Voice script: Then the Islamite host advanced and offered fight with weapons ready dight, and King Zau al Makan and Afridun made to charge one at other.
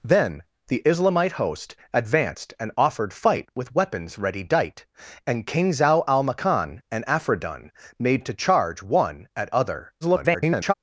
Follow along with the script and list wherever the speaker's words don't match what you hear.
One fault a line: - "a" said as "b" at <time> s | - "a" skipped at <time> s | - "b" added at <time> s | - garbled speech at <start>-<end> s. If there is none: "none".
- garbled speech at 10.0-10.7 s